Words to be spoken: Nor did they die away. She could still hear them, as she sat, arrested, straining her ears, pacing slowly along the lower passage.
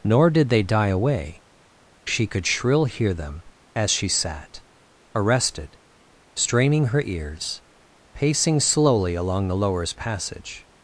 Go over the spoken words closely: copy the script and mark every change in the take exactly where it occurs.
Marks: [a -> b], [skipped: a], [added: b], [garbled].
Nor did they die away. She could [still -> shrill] hear them, as she sat, arrested, straining her ears, pacing slowly along the [lower -> lowers] passage.